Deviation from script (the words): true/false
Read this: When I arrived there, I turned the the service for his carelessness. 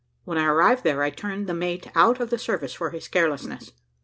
true